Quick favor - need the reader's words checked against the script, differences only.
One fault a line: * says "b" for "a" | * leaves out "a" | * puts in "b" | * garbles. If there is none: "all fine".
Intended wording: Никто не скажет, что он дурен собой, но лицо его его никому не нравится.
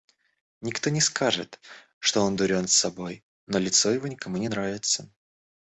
* leaves out "его"